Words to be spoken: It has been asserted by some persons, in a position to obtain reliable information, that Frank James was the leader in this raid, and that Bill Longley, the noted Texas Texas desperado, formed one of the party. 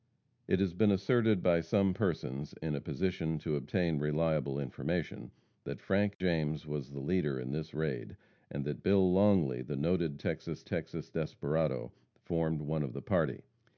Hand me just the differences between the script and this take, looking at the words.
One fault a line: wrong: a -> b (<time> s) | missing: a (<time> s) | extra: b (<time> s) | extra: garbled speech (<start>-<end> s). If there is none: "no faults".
no faults